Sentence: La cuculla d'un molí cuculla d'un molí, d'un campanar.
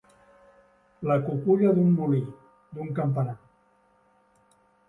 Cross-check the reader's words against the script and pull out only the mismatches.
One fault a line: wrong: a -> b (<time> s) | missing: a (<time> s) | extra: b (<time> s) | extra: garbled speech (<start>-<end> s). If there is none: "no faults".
missing: cuculla d'un molí (2.2 s)